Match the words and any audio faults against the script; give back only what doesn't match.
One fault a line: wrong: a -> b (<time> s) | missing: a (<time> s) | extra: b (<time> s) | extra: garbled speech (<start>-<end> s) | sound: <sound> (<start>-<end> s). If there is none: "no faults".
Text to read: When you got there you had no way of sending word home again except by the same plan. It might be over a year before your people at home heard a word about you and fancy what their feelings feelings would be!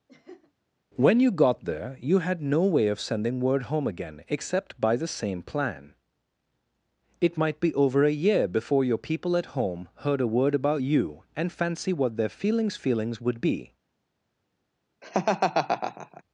sound: laugh (0.1-0.5 s)
sound: laugh (15.0-16.2 s)